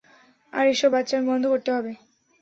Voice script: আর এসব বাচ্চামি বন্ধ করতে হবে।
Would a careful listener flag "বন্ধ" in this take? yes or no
no